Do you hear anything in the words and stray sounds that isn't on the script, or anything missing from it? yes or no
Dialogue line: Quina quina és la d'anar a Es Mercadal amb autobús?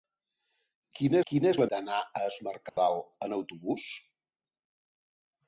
yes